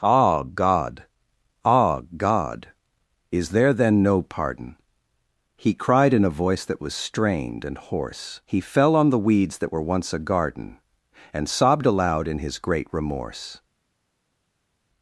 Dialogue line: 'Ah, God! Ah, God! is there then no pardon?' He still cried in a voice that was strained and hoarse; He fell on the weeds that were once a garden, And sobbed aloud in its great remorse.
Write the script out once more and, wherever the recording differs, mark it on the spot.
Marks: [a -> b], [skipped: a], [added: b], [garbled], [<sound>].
'Ah, God! Ah, God! is there then no pardon?' He [skipped: still] cried in a voice that was strained and hoarse; He fell on the weeds that were once a garden, And sobbed aloud in [its -> his] great remorse.